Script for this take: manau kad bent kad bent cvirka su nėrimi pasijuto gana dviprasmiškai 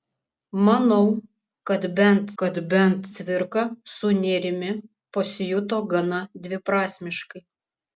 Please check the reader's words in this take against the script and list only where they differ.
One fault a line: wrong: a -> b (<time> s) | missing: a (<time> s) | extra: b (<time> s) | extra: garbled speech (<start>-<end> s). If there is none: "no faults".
no faults